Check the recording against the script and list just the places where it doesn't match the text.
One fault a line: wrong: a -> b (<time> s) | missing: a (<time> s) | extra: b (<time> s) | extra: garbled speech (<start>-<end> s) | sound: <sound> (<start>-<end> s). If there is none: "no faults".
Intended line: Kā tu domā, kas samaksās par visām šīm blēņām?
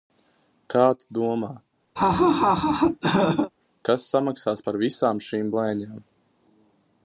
sound: laugh (2.0-3.5 s)